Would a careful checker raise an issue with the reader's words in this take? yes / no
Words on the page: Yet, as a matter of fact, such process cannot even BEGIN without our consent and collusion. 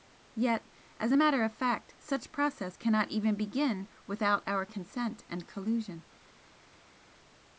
no